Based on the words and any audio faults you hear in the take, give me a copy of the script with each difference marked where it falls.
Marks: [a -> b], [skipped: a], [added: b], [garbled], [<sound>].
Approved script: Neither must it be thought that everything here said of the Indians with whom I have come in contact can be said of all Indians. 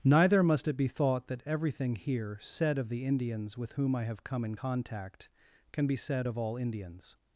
Neither must it be thought that everything here said of the Indians with whom I have come in contact can be said of all Indians.